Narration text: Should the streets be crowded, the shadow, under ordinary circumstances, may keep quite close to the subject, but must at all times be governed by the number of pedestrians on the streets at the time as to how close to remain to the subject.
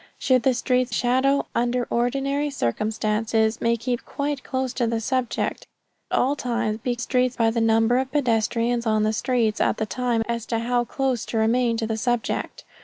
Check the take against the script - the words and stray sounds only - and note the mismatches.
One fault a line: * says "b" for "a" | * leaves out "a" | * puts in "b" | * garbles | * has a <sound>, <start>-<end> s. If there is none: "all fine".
* leaves out "be crowded the"
* leaves out "but must at"
* says "streets" for "governed"